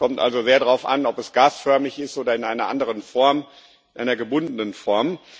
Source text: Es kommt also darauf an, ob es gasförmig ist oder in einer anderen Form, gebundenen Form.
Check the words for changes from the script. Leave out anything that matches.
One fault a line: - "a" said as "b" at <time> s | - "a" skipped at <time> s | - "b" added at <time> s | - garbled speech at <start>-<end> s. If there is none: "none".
- "sehr" added at 0.4 s
- "einer" added at 4.0 s